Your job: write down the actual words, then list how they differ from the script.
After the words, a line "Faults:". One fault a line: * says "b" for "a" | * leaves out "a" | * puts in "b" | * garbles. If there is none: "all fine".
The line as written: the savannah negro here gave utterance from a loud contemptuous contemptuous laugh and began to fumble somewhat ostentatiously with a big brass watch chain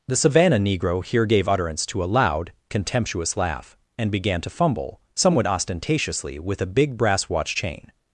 the savannah negro here gave utterance to a loud contemptuous laugh and began to fumble somewhat ostentatiously with a big brass watch chain
Faults:
* says "to" for "from"
* leaves out "contemptuous"